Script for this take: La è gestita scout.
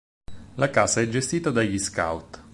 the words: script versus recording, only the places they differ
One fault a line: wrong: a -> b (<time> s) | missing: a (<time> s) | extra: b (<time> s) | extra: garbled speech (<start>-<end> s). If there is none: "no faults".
extra: casa (0.7 s)
extra: dagli (1.5 s)